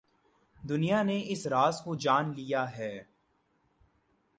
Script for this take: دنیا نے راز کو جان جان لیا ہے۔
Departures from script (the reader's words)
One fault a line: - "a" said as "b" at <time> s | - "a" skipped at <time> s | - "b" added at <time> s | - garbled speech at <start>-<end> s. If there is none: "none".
- "اس" added at 1.2 s
- "جان" skipped at 2.3 s